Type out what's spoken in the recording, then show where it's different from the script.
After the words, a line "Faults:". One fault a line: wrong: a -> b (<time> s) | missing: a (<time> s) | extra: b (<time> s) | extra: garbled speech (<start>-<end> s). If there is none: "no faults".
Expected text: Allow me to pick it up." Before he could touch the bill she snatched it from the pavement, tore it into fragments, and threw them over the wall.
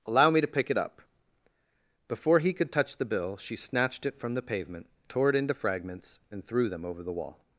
Allow me to pick it up." Before he could touch the bill she snatched it from the pavement, tore it into fragments, and threw them over the wall.
Faults:
no faults